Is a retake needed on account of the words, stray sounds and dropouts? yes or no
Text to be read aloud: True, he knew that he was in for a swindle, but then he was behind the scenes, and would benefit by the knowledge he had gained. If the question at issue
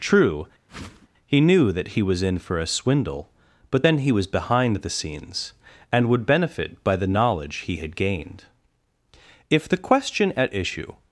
yes